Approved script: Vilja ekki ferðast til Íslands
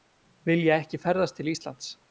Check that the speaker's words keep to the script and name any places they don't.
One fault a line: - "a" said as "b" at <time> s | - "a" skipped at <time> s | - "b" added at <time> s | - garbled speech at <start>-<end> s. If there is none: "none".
none